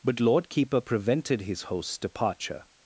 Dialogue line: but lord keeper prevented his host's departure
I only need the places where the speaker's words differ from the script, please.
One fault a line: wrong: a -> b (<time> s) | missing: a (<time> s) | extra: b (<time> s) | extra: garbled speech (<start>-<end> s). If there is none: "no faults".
no faults